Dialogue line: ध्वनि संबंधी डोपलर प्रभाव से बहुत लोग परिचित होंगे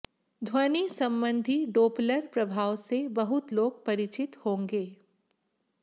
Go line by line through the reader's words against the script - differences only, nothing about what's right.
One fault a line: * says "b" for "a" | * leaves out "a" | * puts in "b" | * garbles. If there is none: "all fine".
all fine